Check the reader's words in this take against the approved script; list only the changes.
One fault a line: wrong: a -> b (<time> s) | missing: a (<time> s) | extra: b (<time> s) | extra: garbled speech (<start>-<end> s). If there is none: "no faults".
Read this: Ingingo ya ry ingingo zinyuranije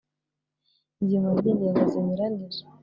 no faults